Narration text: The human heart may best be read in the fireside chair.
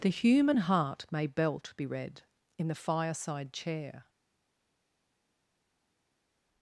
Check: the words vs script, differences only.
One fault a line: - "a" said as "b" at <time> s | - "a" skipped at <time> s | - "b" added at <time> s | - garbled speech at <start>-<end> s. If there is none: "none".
- "best" said as "belt" at 1.3 s